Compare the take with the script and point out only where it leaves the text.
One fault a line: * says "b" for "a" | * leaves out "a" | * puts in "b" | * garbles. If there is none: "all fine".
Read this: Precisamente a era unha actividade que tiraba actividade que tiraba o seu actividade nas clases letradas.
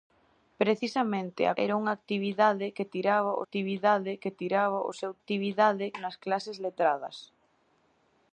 all fine